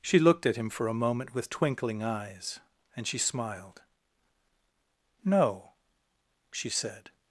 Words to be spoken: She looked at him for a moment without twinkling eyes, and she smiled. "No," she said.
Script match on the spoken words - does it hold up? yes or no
no